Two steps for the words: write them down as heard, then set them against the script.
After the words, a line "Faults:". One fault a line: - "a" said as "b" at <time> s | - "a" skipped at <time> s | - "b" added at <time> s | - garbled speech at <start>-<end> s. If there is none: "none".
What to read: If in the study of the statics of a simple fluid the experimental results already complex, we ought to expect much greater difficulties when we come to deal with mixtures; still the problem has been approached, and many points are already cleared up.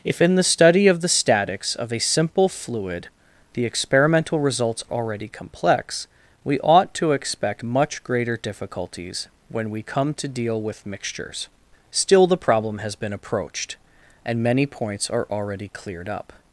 If in the study of the statics of a simple fluid the experimental results already complex, we ought to expect much greater difficulties when we come to deal with mixtures; still the problem has been approached, and many points are already cleared up.
Faults:
none